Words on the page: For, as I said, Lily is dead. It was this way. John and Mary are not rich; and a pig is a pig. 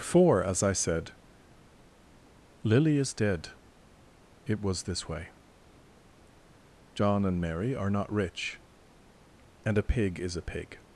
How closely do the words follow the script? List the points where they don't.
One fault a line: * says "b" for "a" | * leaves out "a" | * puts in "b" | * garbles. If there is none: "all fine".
all fine